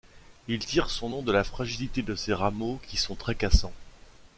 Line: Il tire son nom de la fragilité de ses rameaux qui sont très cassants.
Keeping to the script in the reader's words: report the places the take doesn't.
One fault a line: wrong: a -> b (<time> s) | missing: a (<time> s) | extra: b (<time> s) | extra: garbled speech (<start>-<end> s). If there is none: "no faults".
no faults